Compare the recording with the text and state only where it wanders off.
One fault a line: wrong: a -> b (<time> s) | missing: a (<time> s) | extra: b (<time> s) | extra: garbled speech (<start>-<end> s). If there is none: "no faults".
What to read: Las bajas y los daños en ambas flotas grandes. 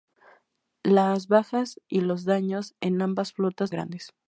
no faults